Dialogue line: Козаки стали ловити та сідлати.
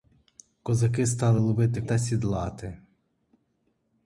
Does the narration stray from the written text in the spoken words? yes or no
no